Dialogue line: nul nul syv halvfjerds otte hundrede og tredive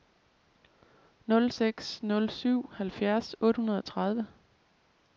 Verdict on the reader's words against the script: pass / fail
fail